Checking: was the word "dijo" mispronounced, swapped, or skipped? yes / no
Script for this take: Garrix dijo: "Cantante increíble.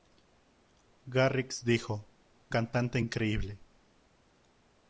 no